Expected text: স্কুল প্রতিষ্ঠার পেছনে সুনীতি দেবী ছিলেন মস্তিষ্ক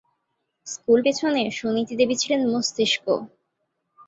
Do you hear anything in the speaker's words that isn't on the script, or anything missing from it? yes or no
yes